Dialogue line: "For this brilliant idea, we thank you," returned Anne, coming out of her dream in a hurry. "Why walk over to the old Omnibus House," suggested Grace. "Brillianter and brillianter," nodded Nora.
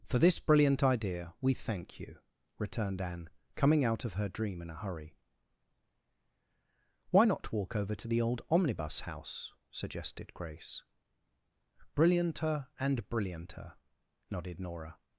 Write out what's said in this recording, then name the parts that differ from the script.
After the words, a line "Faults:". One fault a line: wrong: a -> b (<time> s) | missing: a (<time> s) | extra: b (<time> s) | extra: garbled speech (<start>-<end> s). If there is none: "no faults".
"For this brilliant idea, we thank you," returned Anne, coming out of her dream in a hurry. "Why not walk over to the old Omnibus House," suggested Grace. "Brillianter and brillianter," nodded Nora.
Faults:
extra: not (7.2 s)